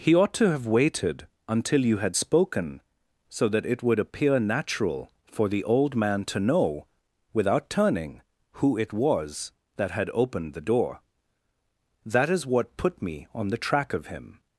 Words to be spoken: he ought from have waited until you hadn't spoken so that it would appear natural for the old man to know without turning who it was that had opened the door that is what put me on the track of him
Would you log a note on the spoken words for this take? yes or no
yes